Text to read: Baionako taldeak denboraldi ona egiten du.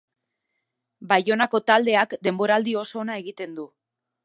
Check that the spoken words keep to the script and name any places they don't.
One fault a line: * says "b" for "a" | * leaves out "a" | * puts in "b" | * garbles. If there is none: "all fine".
* puts in "oso"